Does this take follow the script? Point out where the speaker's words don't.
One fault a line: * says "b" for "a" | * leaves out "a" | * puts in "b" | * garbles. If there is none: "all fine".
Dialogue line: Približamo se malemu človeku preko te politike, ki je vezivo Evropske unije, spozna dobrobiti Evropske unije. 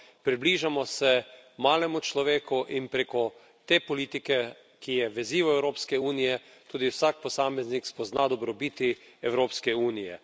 * puts in "in"
* puts in "tudi vsak posameznik"